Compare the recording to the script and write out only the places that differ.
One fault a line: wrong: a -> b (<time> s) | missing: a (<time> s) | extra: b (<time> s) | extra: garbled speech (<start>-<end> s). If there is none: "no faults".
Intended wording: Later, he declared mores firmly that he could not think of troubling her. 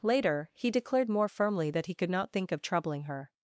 wrong: mores -> more (1.1 s)